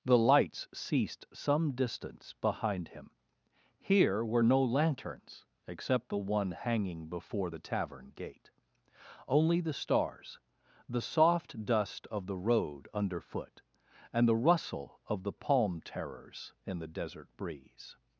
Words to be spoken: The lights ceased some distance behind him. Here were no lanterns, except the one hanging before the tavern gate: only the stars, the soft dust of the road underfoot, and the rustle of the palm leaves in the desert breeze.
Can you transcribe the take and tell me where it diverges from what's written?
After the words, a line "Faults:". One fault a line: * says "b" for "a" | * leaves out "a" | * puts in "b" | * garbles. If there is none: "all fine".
The lights ceased some distance behind him. Here were no lanterns, except the one hanging before the tavern gate: only the stars, the soft dust of the road underfoot, and the rustle of the palm terrors in the desert breeze.
Faults:
* says "terrors" for "leaves"